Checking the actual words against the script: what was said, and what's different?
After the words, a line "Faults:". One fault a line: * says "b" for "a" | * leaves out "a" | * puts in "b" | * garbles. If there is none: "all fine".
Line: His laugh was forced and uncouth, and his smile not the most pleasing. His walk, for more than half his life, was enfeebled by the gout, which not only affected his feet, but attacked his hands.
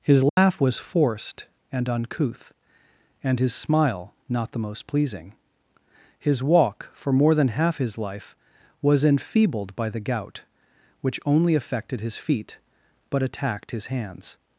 His laugh was forced and uncouth, and his smile not the most pleasing. His walk, for more than half his life, was enfeebled by the gout, which only affected his feet, but attacked his hands.
Faults:
* leaves out "not"